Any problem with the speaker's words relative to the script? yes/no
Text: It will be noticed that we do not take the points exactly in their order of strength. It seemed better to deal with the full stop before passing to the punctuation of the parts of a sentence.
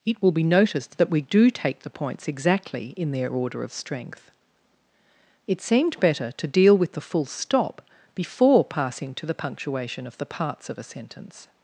yes